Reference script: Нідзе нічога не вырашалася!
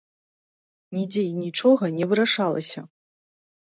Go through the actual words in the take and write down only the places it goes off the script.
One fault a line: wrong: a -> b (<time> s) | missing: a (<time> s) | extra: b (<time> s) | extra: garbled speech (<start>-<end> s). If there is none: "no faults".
extra: і (1.3 s)